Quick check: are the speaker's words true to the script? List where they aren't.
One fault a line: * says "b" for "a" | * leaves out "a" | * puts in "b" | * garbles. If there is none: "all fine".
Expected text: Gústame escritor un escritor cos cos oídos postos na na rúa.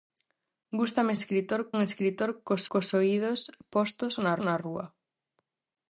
all fine